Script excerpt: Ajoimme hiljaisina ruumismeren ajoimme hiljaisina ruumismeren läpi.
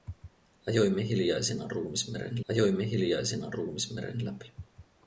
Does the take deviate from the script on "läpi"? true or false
false